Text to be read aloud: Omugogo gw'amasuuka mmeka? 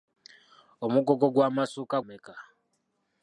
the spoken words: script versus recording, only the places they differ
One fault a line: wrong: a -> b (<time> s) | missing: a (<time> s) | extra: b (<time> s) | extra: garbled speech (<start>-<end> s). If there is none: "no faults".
no faults